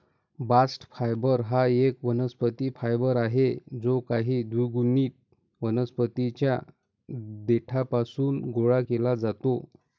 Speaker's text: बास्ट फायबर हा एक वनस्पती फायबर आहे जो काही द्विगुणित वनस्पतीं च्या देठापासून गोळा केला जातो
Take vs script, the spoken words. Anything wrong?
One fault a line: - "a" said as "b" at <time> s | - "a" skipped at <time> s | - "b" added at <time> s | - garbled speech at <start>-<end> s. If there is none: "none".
none